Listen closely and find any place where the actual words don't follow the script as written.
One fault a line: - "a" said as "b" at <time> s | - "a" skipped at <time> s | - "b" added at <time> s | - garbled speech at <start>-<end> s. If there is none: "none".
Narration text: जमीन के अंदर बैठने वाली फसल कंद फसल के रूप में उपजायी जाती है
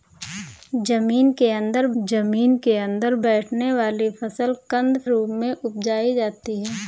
- "जमीन के अंदर" added at 2.0 s
- "फसल के" skipped at 5.0 s